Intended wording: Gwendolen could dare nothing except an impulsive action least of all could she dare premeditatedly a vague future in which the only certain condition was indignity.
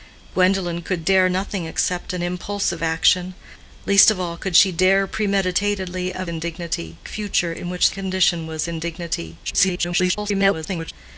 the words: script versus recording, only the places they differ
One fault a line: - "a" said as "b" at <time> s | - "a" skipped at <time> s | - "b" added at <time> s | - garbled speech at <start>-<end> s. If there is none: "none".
- "vague" said as "indignity" at 6.3 s
- "the only certain" skipped at 7.9 s
- garbled speech at 9.4-10.9 s